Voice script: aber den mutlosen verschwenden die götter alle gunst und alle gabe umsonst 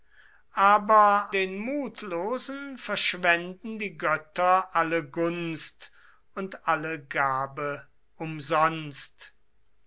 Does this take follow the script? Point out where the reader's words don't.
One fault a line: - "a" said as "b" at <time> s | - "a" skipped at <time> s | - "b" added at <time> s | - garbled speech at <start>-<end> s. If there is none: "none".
none